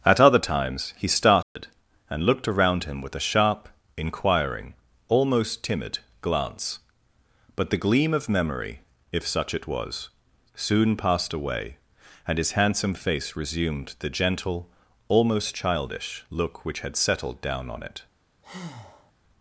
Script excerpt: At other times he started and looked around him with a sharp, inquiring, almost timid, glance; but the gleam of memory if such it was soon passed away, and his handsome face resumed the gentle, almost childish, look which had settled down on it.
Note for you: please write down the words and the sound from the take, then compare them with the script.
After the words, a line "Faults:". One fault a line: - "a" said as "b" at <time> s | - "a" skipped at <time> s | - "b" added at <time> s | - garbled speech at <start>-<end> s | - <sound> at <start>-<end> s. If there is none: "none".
At other times he started and looked around him with a sharp, inquiring, almost timid, glance; but the gleam of memory if such it was soon passed away, and his handsome face resumed the gentle, almost childish, look which had settled down on it.
Faults:
- dropout at 1.4-1.6 s
- breath at 18.4-19.1 s